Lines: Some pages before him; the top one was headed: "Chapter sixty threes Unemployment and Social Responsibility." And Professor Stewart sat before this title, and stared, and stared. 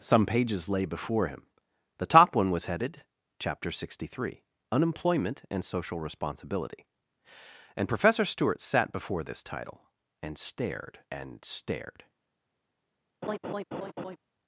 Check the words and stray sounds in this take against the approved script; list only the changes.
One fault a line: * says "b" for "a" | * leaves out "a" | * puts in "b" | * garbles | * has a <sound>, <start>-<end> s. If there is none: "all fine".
* puts in "lay"
* says "three" for "threes"
* has a laugh, 13.2-14.2 s